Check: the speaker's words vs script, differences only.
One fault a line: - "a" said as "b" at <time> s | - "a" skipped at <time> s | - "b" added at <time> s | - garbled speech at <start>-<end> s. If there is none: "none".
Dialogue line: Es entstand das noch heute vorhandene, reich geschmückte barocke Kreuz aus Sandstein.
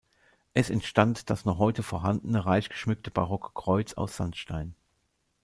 none